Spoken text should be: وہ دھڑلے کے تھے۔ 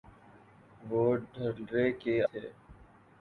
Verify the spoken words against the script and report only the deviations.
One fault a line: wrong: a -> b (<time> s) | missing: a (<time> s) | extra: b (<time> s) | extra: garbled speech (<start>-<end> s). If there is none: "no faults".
no faults